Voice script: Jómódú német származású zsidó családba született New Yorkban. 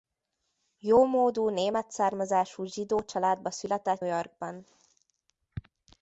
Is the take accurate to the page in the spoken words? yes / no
no